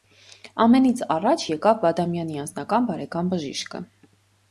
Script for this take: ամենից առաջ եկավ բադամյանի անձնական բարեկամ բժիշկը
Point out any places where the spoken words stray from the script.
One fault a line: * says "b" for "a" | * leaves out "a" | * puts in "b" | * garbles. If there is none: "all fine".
all fine